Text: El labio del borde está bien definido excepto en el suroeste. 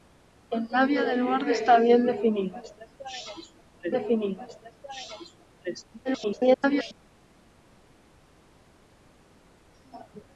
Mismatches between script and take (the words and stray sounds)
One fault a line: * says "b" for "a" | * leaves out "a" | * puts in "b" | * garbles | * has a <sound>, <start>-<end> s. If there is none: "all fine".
* puts in "definido excepto en"
* garbles